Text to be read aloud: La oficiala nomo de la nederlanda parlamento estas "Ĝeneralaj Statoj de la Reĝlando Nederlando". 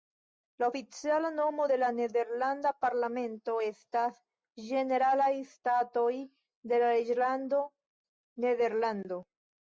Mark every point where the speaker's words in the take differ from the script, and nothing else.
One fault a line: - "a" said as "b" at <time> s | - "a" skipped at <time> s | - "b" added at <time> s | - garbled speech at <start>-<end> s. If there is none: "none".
none